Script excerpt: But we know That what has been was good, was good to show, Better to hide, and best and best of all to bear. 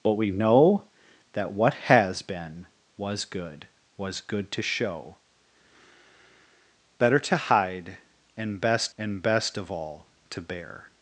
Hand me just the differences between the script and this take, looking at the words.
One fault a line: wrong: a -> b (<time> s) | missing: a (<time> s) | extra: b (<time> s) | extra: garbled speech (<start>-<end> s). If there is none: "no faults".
no faults